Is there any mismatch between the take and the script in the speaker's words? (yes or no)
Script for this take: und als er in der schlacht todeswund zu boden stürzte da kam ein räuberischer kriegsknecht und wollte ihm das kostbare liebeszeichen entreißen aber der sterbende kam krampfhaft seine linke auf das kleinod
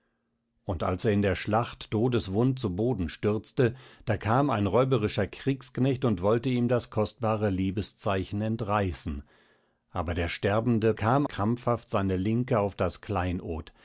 no